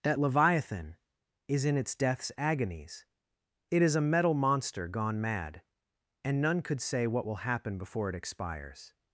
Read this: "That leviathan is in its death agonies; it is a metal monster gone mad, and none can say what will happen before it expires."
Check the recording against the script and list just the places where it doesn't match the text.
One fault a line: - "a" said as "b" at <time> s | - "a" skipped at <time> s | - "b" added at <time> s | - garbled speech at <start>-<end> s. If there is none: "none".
- "death" said as "deaths" at 2.0 s
- "can" said as "could" at 6.6 s